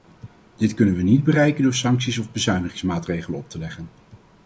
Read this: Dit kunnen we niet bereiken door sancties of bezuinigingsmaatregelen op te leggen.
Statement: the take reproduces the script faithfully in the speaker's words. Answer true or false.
true